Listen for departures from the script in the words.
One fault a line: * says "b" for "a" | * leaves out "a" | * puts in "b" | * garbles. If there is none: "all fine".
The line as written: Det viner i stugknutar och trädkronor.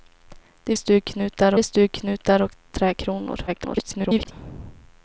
* says "stugknutar" for "viner"
* garbles